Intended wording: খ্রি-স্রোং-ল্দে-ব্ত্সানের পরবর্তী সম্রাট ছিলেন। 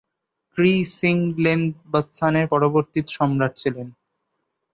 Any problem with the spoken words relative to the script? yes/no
no